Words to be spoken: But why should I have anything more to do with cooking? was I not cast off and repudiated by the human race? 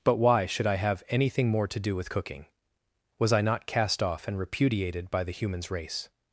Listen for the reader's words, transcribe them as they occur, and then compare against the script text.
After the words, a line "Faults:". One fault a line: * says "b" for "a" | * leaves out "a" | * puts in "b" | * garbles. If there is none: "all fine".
But why should I have anything more to do with cooking? was I not cast off and repudiated by the humans race?
Faults:
* says "humans" for "human"